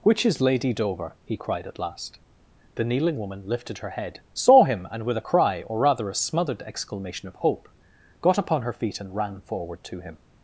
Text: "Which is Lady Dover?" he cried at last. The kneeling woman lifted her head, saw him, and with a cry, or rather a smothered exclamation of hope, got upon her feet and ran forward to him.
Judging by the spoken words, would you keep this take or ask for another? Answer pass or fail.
pass